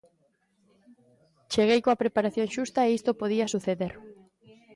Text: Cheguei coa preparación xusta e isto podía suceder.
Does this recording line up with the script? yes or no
yes